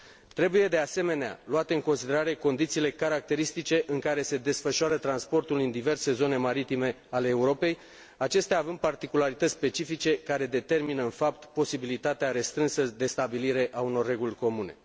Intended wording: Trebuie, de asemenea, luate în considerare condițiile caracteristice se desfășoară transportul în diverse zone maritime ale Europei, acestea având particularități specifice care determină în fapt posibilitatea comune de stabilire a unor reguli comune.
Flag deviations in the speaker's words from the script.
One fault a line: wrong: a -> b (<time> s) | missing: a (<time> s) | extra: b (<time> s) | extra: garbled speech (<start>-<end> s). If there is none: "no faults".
extra: în care (3.9 s)
wrong: comune -> restrânsă (12.3 s)